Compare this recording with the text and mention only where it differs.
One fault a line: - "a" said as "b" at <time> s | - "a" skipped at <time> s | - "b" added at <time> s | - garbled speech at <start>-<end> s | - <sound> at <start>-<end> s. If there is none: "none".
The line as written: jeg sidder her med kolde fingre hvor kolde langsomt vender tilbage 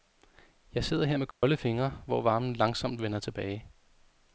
- dropout at 1.3-1.4 s
- "kolde" said as "varmen" at 2.2 s